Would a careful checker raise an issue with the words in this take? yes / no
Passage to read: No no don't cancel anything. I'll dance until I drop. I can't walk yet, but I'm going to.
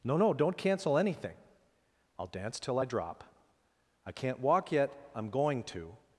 yes